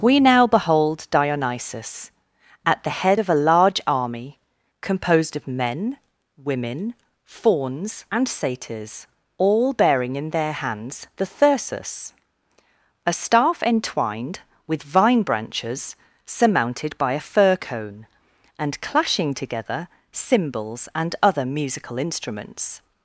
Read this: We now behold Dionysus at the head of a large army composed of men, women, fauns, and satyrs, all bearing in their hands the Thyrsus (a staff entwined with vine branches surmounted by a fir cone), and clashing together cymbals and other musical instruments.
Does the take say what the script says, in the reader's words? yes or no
yes